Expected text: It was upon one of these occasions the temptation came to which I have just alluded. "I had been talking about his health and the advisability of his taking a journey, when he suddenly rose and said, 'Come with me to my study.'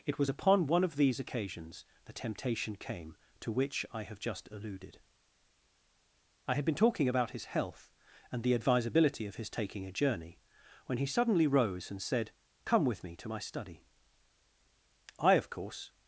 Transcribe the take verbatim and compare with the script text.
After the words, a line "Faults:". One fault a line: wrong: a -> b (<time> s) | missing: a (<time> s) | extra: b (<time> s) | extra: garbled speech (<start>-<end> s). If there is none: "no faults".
It was upon one of these occasions the temptation came to which I have just alluded. "I had been talking about his health and the advisability of his taking a journey, when he suddenly rose and said, 'Come with me to my study.' "I of course
Faults:
extra: I of course (15.2 s)